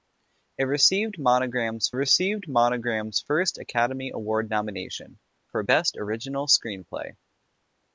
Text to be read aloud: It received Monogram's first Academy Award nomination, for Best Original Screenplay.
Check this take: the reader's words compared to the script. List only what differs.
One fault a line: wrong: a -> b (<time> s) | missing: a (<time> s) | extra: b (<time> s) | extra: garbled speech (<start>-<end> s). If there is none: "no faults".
extra: received Monogram's (1.9 s)